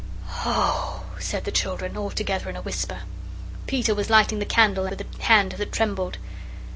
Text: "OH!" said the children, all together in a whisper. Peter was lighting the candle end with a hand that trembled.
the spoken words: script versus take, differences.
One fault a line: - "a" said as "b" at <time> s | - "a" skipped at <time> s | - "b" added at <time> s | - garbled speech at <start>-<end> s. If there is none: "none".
- "end" skipped at 4.9 s